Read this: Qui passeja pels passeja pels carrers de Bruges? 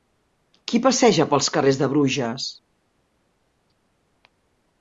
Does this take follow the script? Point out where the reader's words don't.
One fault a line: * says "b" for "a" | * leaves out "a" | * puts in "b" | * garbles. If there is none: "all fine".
* leaves out "passeja pels"